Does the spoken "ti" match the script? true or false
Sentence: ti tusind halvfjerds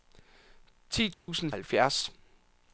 true